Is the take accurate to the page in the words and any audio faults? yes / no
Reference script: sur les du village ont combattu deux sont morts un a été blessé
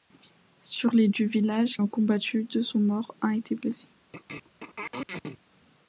no